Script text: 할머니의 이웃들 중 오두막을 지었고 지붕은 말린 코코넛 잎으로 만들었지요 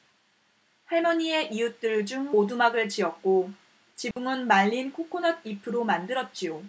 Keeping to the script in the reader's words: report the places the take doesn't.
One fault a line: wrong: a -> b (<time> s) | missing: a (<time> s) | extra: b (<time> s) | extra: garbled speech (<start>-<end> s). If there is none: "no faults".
no faults